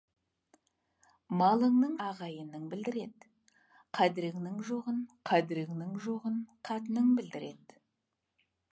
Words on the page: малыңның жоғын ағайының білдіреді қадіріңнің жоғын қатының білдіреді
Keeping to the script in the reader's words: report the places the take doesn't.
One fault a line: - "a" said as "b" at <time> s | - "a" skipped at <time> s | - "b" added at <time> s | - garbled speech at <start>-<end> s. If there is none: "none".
- "жоғын" skipped at 1.9 s
- "қадіріңнің жоғын" added at 5.3 s